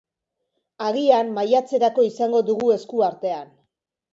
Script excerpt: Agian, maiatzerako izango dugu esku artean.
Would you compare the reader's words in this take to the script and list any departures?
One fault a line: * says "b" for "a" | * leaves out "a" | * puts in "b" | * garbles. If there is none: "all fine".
all fine